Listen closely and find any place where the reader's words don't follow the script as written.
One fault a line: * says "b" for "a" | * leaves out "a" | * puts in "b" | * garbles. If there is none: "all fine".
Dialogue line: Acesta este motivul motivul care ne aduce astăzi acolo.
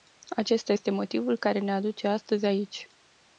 * leaves out "motivul"
* says "aici" for "acolo"